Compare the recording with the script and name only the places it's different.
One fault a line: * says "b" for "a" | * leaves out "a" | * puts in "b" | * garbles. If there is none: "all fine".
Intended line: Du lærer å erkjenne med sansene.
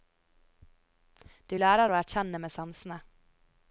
all fine